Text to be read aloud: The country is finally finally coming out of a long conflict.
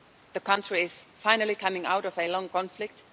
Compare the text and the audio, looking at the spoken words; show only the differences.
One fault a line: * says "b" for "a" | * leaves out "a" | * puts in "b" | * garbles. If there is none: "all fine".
* leaves out "finally"